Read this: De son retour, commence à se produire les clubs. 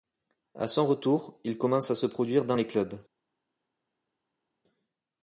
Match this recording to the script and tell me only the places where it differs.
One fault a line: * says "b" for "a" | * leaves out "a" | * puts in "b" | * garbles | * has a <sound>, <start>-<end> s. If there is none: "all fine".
* says "À" for "De"
* puts in "il"
* puts in "dans"